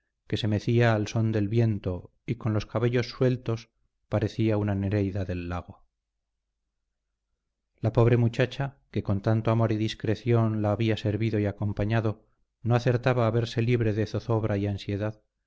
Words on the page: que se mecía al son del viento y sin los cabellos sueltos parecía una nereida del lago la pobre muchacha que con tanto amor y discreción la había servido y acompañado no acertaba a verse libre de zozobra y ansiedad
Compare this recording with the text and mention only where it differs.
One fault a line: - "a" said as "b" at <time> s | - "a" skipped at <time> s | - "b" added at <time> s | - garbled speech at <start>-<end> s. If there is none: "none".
- "sin" said as "con" at 2.4 s